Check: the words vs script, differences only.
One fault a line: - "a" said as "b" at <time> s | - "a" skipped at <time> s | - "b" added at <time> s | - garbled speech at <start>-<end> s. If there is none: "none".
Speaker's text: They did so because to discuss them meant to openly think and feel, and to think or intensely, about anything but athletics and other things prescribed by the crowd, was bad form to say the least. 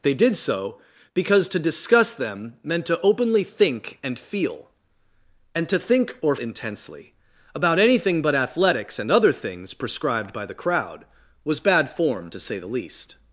none